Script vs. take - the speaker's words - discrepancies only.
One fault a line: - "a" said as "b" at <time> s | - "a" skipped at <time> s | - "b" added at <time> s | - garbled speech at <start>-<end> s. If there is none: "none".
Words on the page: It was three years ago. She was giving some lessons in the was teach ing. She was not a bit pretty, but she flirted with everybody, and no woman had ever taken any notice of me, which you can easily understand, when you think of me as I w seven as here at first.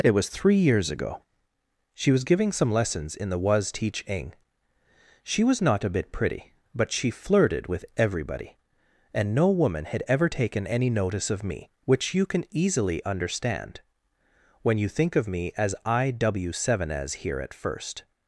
none